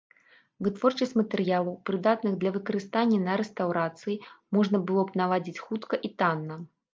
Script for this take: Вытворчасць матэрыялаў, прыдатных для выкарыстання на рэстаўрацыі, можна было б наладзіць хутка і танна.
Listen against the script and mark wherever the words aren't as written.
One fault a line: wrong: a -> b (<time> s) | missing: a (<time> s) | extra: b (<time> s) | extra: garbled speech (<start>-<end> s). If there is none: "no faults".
no faults